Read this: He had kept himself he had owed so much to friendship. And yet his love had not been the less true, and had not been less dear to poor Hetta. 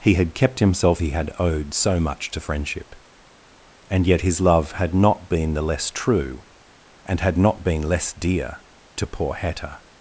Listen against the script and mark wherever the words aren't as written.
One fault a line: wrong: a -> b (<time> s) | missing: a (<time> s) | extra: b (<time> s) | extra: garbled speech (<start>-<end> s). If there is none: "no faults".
no faults